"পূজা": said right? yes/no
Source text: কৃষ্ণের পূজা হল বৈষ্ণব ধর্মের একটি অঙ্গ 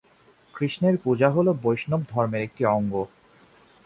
yes